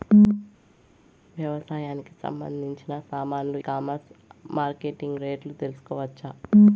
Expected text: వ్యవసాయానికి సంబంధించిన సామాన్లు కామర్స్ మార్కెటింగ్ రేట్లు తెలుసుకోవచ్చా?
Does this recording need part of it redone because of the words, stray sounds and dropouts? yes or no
no